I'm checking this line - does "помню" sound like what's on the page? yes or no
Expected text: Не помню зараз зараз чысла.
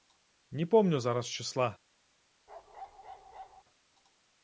yes